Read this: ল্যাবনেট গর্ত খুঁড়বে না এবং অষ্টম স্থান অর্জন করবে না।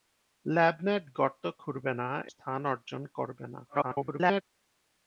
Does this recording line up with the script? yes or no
no